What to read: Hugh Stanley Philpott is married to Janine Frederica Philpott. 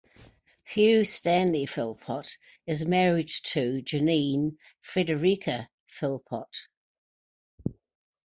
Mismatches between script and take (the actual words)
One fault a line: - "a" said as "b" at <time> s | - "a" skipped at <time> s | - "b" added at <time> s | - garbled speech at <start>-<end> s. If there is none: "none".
none